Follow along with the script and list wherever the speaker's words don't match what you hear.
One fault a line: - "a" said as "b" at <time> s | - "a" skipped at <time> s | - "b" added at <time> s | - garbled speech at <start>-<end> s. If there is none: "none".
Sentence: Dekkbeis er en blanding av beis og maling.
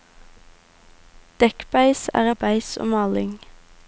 - "en blanding" skipped at 2.3 s